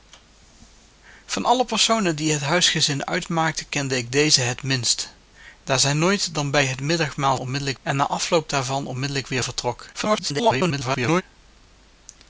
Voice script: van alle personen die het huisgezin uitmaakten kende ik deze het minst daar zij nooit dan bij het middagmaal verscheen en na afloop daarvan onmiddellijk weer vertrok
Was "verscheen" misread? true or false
true